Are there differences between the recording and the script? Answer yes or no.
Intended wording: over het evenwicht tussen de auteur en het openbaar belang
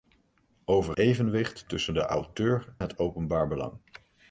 yes